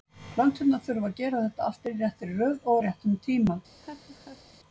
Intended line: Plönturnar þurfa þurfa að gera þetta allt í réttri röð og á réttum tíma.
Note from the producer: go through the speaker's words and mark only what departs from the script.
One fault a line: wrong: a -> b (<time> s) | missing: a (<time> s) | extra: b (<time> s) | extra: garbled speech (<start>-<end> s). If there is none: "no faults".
missing: þurfa (1.1 s)